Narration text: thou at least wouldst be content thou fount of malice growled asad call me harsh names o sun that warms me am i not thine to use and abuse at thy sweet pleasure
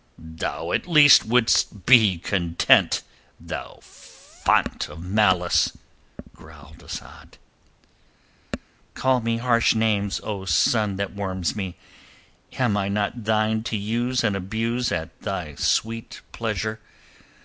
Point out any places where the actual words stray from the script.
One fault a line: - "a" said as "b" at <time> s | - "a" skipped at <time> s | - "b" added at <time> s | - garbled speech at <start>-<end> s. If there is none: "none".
none